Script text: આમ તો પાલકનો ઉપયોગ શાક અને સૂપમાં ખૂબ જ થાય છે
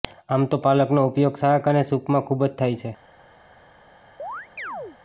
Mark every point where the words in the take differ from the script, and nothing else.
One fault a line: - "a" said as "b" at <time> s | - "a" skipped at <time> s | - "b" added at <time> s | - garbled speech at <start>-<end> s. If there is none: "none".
none